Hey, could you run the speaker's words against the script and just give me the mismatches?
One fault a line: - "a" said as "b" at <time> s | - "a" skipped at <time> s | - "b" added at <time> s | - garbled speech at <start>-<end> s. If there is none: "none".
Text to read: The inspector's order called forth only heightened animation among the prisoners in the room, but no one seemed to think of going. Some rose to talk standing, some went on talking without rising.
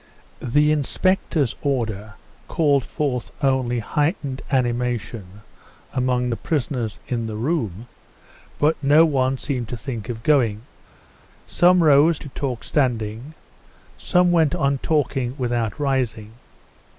none